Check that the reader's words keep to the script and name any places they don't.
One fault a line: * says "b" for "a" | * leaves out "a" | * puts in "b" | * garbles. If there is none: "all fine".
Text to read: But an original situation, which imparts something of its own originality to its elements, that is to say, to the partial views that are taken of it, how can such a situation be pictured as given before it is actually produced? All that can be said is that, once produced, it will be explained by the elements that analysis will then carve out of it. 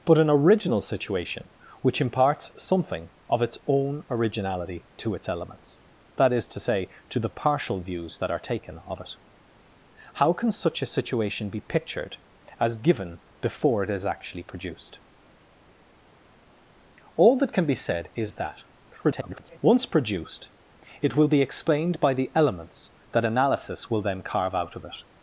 * garbles